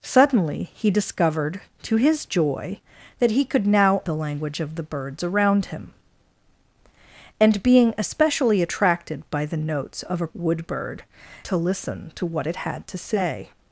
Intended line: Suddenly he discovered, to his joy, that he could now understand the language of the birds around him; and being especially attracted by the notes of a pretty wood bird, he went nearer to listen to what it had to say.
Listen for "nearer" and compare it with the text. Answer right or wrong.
wrong